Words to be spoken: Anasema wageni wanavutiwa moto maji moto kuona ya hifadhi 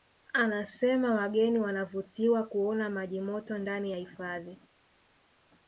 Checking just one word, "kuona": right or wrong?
wrong